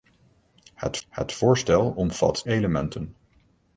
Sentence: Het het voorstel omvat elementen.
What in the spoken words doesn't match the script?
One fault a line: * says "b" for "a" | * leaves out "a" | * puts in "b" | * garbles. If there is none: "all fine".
all fine